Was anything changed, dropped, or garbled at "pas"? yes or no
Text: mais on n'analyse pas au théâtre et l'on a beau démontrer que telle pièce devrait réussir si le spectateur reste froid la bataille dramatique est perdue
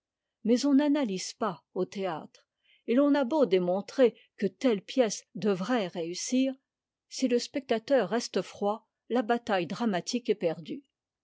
no